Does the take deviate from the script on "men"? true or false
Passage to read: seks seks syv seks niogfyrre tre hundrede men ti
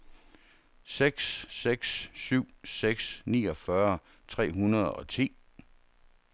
true